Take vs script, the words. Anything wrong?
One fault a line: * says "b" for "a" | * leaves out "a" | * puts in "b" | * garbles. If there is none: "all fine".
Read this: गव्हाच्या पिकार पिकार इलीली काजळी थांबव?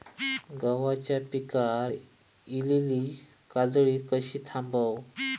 * leaves out "पिकार"
* puts in "कशी"